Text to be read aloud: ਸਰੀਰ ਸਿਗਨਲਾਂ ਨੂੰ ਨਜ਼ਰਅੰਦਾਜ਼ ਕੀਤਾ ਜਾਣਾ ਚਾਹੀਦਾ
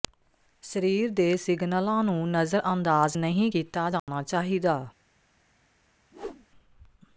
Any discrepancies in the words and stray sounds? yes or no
yes